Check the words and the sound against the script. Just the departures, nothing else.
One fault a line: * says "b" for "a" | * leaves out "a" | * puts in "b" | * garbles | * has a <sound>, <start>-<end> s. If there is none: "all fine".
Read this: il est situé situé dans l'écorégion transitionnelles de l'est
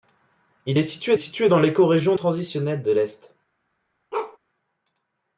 * has a bark, 4.1-4.4 s